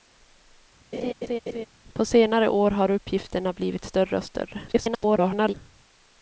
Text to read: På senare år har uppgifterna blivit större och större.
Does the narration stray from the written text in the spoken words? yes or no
yes